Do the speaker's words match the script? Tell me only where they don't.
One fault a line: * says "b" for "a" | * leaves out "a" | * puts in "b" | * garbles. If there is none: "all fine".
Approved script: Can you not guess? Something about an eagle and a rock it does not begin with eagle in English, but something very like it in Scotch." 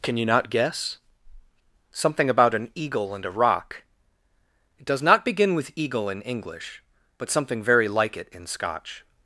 all fine